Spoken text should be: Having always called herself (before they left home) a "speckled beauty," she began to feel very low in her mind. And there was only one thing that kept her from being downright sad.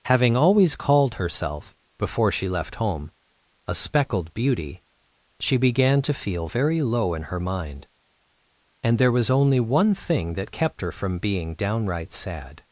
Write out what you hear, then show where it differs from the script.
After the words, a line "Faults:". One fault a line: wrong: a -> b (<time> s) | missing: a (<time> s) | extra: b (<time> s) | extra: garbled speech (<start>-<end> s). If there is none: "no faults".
Having always called herself (before she left home) a "speckled beauty," she began to feel very low in her mind. And there was only one thing that kept her from being downright sad.
Faults:
wrong: they -> she (2.3 s)